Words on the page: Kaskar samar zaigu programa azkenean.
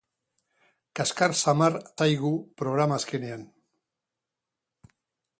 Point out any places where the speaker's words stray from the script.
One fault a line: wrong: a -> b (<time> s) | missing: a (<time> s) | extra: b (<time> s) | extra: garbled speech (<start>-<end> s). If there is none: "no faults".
no faults